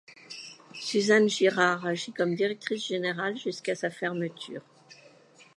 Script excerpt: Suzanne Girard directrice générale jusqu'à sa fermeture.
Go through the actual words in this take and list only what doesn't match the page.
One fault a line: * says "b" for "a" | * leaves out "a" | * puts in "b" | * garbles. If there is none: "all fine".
* puts in "agit comme"